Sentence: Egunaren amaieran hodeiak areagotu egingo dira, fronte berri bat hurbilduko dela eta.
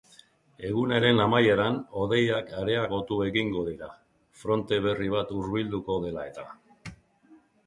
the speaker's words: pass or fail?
pass